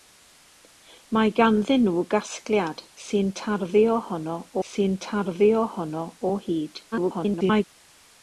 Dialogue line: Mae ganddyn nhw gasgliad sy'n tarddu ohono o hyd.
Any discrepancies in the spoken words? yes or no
yes